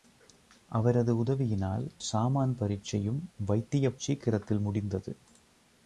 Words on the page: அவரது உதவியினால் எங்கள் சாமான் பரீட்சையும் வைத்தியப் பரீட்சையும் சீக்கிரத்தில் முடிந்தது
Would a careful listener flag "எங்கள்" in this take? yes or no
yes